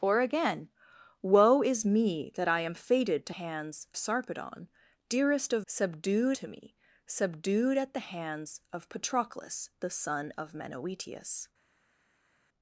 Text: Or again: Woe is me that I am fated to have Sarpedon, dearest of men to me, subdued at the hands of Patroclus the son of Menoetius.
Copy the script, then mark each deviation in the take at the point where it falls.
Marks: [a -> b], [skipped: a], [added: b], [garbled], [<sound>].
Or again: Woe is me that I am fated to [have -> hands] Sarpedon, dearest of [men -> subdued] to me, subdued at the hands of Patroclus the son of Menoetius.